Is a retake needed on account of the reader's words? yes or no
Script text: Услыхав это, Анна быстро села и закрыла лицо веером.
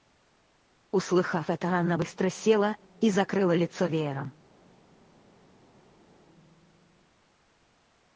no